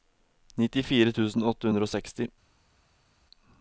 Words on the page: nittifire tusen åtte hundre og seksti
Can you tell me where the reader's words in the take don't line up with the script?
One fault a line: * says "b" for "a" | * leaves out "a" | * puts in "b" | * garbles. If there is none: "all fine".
all fine